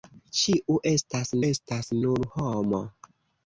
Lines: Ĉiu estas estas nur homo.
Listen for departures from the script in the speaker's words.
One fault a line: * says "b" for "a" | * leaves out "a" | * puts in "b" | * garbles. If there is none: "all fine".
all fine